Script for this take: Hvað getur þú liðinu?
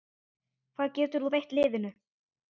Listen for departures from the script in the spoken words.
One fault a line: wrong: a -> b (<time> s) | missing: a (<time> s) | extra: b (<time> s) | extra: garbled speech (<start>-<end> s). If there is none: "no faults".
extra: veitt (1.3 s)